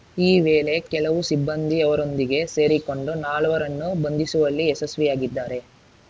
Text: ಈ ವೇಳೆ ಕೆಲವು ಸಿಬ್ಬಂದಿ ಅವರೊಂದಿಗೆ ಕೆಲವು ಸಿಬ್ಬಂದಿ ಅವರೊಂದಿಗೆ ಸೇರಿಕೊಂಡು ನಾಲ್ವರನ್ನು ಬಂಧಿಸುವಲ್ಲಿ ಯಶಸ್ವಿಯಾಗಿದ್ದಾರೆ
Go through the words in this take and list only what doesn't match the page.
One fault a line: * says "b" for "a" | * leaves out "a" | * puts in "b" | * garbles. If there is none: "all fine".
* leaves out "ಕೆಲವು ಸಿಬ್ಬಂದಿ ಅವರೊಂದಿಗೆ"